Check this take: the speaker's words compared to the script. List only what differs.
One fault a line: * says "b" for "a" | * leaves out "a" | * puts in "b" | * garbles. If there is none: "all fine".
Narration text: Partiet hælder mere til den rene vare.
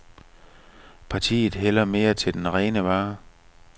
all fine